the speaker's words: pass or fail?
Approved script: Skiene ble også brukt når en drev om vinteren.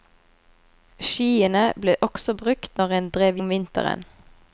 pass